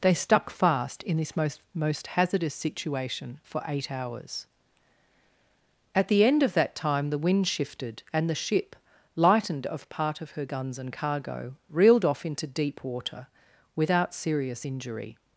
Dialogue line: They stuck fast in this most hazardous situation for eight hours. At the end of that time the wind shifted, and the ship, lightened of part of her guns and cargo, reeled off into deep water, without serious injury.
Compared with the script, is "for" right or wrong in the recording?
right